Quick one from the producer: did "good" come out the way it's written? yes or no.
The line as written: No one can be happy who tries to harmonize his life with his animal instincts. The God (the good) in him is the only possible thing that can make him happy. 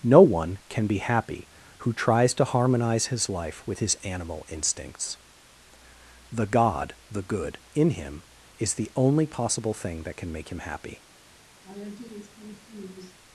yes